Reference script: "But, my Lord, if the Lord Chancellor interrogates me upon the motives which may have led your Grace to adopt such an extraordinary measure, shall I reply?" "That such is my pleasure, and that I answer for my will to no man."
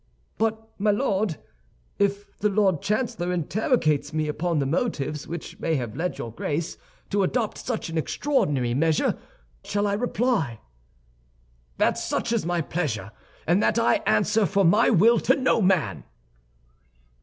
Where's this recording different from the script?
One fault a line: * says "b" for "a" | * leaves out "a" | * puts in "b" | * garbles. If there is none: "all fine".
all fine